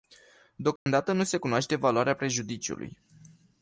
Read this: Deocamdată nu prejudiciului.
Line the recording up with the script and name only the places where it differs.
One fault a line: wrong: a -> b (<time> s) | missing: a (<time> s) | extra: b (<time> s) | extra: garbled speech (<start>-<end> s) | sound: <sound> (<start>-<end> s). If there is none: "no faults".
sound: dropout (0.8-0.9 s)
extra: se cunoaște valoarea (1.2 s)